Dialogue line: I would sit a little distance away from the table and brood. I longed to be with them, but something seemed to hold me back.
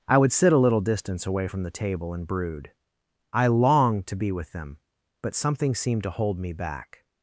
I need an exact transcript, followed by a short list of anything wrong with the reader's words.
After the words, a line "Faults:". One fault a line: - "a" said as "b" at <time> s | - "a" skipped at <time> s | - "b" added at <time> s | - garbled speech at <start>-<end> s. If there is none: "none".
I would sit a little distance away from the table and brood. I longed to be with them, but something seemed to hold me back.
Faults:
none